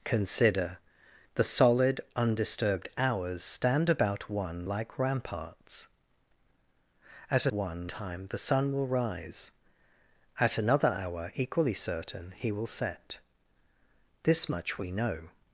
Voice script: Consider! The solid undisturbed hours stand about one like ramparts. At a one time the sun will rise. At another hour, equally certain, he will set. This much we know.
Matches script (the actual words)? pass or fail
pass